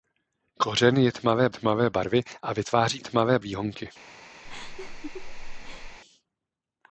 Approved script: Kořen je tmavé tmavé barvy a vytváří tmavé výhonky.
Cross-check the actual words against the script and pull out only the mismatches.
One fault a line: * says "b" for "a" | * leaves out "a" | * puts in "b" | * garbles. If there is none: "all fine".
all fine